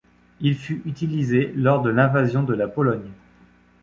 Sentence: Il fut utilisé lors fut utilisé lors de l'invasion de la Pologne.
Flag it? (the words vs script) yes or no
yes